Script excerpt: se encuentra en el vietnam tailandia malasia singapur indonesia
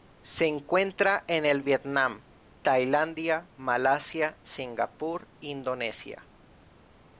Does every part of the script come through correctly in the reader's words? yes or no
yes